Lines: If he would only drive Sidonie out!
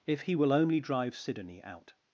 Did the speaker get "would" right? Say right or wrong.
wrong